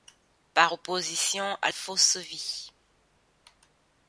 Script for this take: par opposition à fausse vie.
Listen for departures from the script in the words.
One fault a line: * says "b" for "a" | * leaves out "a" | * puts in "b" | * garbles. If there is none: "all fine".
all fine